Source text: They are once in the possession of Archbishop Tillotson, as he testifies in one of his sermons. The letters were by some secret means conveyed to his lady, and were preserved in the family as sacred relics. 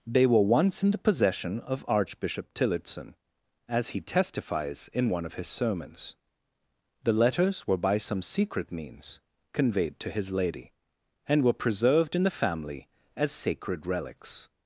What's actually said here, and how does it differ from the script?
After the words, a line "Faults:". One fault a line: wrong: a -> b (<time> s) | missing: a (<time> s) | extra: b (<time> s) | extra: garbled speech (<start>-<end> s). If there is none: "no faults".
They were once in the possession of Archbishop Tillotson, as he testifies in one of his sermons. The letters were by some secret means conveyed to his lady, and were preserved in the family as sacred relics.
Faults:
wrong: are -> were (0.2 s)